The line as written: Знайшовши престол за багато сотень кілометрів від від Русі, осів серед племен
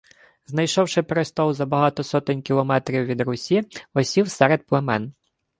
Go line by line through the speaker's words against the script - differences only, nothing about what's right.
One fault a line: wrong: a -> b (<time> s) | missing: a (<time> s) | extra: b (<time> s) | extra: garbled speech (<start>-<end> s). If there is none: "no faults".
missing: від (3.2 s)